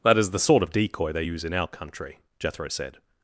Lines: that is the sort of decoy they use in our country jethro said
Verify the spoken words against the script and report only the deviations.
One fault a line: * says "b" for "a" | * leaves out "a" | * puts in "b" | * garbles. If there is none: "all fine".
all fine